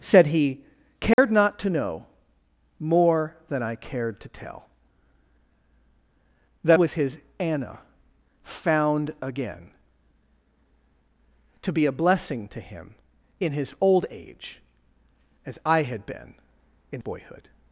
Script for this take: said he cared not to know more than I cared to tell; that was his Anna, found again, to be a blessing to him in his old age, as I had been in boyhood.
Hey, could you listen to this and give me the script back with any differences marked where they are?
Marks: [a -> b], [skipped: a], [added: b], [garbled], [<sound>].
said he cared [dropout] not to know more than I cared to tell; that was his Anna, found again, to be a blessing to him in his old age, as I had been in boyhood.